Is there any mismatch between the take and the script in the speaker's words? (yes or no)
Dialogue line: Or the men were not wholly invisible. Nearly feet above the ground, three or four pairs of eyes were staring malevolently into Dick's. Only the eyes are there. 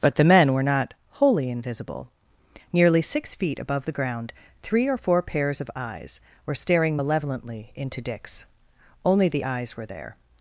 yes